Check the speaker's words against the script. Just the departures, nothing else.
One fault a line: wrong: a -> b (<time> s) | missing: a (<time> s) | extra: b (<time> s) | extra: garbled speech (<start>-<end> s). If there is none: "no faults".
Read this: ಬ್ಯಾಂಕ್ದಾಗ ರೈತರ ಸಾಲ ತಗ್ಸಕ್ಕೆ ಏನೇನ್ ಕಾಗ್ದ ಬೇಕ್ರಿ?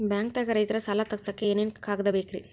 no faults